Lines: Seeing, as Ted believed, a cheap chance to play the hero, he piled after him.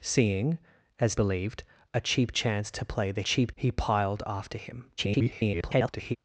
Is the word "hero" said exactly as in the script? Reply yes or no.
no